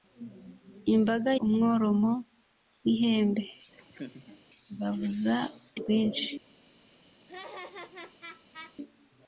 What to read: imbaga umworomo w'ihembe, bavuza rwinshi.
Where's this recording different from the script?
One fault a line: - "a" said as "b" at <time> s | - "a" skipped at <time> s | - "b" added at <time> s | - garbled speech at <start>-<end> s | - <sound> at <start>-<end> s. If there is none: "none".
- laugh at 3.7-4.4 s
- laugh at 7.3-8.8 s